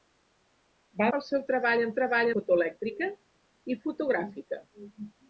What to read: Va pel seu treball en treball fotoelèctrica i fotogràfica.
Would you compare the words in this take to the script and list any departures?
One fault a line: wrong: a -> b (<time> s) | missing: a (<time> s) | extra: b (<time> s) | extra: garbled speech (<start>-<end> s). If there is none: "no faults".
no faults